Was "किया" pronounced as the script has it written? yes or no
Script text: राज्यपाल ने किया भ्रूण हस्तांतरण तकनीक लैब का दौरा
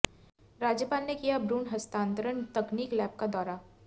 yes